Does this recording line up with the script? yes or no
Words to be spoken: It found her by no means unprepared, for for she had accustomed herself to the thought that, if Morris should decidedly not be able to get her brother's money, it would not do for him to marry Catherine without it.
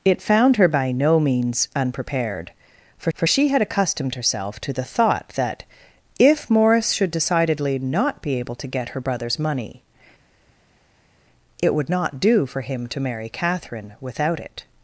yes